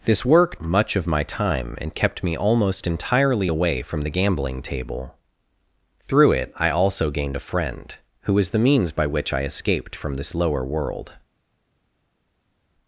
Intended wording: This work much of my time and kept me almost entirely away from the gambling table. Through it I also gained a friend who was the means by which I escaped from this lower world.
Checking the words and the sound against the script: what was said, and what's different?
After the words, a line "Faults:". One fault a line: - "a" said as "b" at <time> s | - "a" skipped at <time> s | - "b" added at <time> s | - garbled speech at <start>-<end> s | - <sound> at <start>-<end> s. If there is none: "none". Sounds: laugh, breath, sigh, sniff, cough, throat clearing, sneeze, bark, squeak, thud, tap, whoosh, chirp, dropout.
This work much of my time and kept me almost entirely away from the gambling table. Through it I also gained a friend who was the means by which I escaped from this lower world.
Faults:
none